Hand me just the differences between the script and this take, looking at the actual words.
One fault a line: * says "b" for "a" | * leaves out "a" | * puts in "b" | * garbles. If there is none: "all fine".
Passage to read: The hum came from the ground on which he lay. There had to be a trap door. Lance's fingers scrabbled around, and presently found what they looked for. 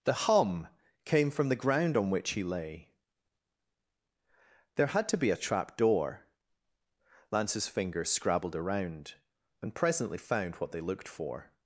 all fine